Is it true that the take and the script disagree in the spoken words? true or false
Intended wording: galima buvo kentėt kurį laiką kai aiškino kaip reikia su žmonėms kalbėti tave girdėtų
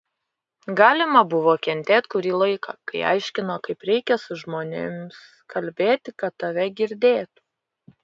true